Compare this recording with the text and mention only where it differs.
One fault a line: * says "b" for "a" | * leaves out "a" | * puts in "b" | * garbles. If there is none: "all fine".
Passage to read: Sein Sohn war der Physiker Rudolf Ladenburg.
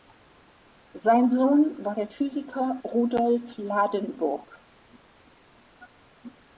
all fine